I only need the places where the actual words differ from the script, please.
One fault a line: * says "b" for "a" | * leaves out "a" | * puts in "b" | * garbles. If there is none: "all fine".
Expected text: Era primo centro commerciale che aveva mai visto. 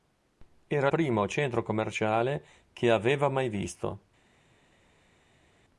all fine